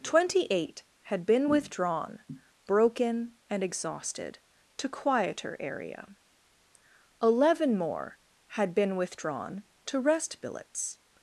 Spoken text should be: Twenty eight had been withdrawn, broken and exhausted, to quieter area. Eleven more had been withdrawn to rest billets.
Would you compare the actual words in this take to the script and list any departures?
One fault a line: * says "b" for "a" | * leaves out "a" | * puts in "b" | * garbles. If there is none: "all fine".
all fine